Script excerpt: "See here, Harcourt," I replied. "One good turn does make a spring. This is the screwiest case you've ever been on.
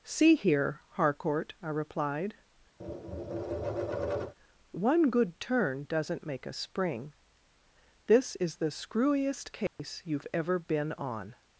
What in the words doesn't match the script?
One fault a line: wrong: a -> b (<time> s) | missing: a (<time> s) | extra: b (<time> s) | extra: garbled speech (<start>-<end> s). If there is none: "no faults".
wrong: does -> doesn't (5.9 s)